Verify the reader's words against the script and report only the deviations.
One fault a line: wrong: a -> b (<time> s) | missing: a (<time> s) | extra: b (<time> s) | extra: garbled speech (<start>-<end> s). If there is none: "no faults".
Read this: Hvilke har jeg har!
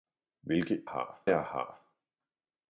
no faults